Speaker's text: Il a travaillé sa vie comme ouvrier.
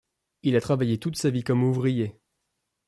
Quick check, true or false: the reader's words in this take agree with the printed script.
false